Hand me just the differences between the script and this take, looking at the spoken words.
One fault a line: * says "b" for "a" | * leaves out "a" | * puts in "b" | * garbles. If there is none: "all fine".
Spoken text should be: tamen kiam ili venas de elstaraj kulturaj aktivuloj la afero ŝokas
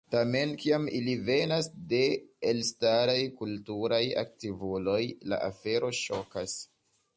all fine